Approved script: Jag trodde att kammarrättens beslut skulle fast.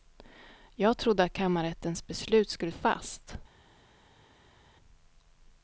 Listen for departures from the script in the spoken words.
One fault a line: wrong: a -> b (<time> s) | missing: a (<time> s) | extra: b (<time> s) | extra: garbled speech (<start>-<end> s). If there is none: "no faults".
no faults